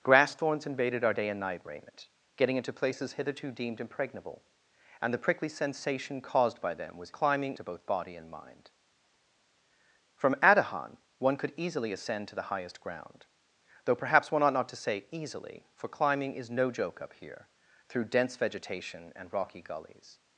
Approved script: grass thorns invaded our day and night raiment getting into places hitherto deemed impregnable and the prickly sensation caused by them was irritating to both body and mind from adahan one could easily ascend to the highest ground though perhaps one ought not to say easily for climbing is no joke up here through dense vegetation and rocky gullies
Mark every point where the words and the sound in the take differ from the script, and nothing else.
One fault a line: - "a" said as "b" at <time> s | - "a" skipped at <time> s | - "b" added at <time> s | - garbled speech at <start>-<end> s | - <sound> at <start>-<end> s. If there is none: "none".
- "irritating" said as "climbing" at 7.1 s